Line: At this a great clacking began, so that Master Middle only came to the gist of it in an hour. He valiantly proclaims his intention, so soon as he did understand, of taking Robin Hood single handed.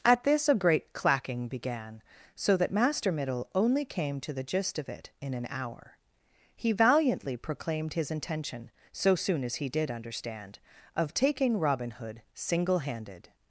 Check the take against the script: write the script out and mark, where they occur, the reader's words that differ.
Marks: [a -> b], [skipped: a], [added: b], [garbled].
At this a great clacking began, so that Master Middle only came to the gist of it in an hour. He valiantly [proclaims -> proclaimed] his intention, so soon as he did understand, of taking Robin Hood single handed.